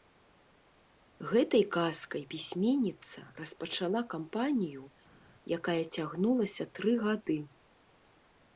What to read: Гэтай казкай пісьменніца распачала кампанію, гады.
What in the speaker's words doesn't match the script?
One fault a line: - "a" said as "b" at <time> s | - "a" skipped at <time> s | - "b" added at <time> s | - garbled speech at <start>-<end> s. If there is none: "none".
- "якая цягнулася тры" added at 5.6 s